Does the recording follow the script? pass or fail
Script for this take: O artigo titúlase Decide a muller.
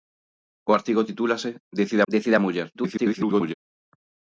fail